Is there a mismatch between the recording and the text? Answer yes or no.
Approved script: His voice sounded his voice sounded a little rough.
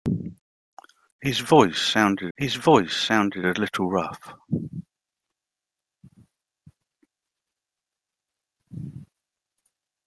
no